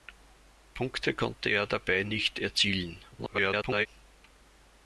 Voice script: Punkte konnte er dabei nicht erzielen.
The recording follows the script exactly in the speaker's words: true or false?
false